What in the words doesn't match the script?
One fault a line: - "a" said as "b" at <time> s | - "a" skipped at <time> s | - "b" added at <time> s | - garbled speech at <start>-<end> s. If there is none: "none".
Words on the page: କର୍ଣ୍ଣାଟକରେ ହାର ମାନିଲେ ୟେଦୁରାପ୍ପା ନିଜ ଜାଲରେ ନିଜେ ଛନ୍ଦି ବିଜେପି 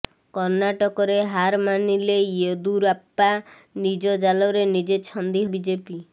none